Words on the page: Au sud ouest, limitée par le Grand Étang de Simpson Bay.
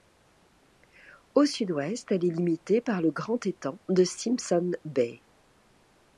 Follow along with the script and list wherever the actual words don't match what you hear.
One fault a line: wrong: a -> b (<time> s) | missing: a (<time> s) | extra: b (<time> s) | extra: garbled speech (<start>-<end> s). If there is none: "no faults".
extra: elle est (2.1 s)